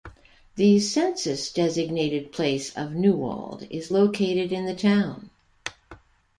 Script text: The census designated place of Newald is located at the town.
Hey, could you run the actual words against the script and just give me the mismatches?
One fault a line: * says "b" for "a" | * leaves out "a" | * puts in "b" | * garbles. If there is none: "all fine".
* says "in" for "at"